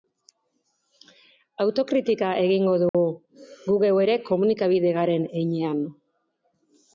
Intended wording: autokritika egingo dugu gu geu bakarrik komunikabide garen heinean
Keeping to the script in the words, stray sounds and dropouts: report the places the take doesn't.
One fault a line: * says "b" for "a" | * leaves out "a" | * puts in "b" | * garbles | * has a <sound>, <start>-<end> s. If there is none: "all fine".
* has a dropout, 2.9-2.9 s
* says "ere" for "bakarrik"